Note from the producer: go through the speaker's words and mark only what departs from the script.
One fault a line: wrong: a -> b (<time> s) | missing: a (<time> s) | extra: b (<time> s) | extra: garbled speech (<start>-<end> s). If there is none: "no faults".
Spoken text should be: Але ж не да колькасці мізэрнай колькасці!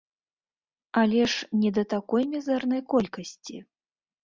wrong: колькасці -> такой (1.9 s)